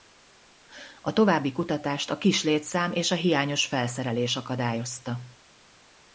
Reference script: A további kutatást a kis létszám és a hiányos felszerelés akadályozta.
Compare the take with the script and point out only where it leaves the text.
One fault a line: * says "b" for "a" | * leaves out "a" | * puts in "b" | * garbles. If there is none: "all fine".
all fine